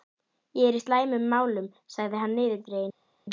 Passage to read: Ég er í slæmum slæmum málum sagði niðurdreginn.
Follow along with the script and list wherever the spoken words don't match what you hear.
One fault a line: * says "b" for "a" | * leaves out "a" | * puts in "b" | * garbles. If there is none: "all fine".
* leaves out "slæmum"
* puts in "hann"